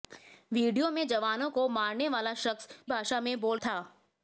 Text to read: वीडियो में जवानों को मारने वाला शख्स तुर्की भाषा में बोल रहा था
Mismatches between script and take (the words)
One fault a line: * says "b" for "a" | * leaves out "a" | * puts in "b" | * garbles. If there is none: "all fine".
* leaves out "तुर्की"
* leaves out "रहा"